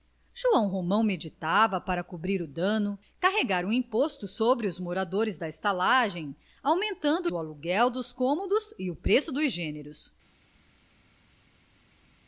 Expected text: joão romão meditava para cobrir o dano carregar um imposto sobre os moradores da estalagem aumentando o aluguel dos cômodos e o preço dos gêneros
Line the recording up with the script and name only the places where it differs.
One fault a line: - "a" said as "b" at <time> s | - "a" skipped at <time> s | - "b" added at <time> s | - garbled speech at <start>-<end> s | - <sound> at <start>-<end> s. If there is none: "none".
none